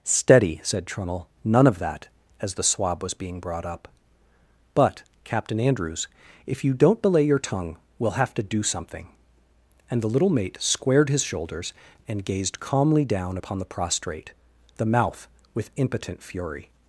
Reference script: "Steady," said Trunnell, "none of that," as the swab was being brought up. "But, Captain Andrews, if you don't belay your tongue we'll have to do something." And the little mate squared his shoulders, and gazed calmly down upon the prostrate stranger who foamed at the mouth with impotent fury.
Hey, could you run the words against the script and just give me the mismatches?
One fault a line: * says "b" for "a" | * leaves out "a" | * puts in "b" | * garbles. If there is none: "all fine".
* leaves out "stranger who foamed at"